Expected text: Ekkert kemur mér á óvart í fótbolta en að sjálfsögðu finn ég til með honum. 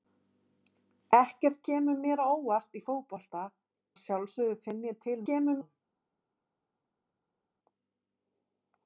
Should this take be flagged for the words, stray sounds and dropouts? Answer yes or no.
yes